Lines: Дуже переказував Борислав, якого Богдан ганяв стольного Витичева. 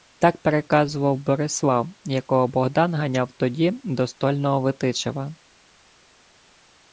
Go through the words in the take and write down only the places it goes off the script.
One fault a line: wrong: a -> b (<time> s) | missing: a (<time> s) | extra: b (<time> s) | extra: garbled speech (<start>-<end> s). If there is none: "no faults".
wrong: Дуже -> Так (0.2 s)
extra: тоді до (3.3 s)